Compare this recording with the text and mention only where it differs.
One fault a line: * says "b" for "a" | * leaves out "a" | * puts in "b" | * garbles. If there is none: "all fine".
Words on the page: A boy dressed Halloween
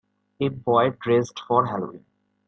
* puts in "for"